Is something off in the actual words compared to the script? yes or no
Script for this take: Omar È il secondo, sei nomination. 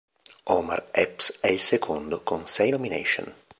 yes